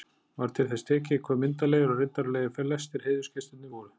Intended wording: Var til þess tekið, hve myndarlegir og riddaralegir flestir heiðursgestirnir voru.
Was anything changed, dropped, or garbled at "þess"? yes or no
no